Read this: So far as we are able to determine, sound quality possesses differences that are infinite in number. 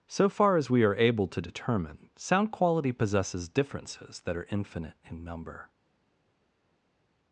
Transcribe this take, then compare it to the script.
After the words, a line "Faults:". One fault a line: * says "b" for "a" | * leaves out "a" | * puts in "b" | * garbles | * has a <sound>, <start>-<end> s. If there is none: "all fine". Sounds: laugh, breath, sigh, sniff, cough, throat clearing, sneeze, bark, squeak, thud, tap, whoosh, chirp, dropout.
So far as we are able to determine, sound quality possesses differences that are infinite in number.
Faults:
all fine